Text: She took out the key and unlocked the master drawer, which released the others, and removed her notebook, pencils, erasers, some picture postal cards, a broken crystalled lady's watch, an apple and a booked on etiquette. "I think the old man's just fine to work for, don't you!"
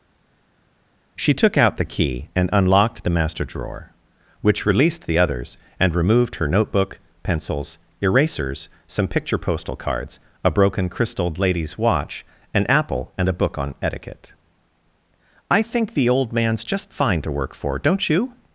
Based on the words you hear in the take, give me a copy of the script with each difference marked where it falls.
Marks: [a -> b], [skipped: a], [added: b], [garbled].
She took out the key and unlocked the master drawer, which released the others, and removed her notebook, pencils, erasers, some picture postal cards, a broken crystalled lady's watch, an apple and a [booked -> book] on etiquette. "I think the old man's just fine to work for, don't you!"